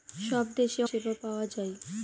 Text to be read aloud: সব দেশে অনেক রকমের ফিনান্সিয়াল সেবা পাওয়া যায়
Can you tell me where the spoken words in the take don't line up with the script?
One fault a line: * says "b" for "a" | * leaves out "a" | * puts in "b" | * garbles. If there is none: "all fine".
* leaves out "অনেক রকমের ফিনান্সিয়াল"